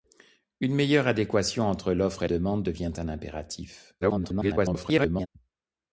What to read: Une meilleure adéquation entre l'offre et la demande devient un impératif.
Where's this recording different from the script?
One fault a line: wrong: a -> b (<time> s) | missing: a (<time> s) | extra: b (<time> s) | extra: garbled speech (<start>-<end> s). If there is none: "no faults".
missing: la (2.3 s)
extra: garbled speech (4.0-5.3 s)